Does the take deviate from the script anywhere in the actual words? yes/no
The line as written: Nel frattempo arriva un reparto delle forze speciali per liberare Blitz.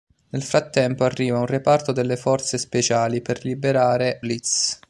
no